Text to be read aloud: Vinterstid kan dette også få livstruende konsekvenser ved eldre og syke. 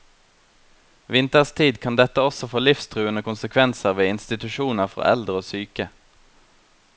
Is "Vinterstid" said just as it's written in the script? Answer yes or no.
yes